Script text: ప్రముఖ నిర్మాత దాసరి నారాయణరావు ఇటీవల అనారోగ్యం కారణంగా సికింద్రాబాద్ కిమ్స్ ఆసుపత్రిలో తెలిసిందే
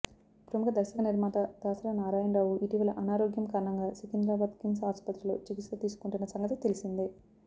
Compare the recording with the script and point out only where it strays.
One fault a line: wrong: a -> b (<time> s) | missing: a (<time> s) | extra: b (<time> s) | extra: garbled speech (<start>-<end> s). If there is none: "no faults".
extra: దర్శక (0.8 s)
extra: చికిత్స తీసుకుంటున్న సంగతి (5.4 s)